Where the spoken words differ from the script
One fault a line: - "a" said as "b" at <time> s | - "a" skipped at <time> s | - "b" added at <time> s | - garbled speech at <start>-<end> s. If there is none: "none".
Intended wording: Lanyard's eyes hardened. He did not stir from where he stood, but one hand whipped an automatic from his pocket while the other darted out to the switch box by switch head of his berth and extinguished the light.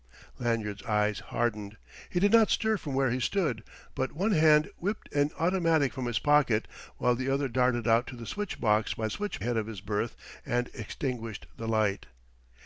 none